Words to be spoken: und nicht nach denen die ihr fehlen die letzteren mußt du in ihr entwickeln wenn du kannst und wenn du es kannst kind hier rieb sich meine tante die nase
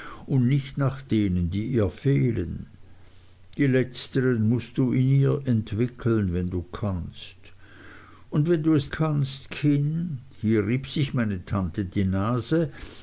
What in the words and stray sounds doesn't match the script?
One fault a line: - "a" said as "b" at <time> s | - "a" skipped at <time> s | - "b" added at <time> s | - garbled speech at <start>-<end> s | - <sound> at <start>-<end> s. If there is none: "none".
none